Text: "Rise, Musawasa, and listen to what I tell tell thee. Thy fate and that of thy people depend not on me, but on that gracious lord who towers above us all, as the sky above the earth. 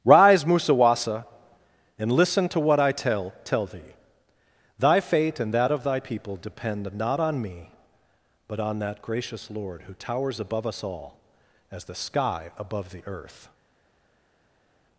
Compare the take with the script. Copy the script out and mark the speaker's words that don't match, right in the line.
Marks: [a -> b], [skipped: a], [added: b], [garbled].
"Rise, Musawasa, and listen to what I tell tell thee. Thy fate and that of thy people depend not on me, but on that gracious lord who towers above us all, as the sky above the earth.